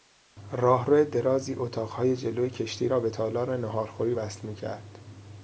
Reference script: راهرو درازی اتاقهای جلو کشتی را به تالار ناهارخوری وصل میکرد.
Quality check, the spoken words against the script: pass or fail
pass